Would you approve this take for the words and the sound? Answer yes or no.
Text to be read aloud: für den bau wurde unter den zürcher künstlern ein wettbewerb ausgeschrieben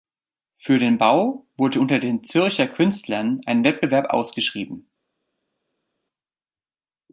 yes